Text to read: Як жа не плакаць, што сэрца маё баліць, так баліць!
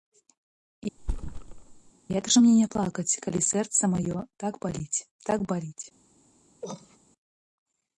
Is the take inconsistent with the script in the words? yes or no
yes